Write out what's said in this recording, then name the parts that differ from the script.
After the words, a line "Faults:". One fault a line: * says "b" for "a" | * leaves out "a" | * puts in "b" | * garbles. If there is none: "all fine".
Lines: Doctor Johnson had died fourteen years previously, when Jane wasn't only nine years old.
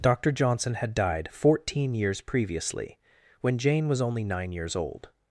Doctor Johnson had died fourteen years previously, when Jane was only nine years old.
Faults:
* says "was" for "wasn't"